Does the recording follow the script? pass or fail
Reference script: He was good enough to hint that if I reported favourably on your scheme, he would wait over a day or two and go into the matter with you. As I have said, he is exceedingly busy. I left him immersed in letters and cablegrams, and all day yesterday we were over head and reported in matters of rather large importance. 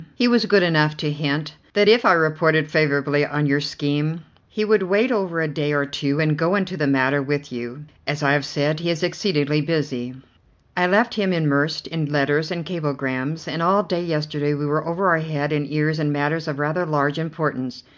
fail